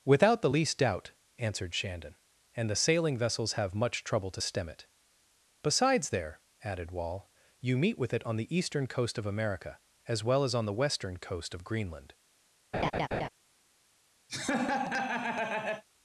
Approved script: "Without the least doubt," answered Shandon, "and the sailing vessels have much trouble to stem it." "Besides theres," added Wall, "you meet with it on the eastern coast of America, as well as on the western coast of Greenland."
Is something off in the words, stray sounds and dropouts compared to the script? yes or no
yes